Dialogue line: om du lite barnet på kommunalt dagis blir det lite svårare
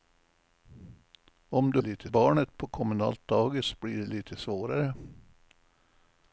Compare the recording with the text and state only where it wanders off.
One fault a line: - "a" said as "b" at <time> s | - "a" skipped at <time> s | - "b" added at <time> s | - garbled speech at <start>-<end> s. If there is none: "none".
none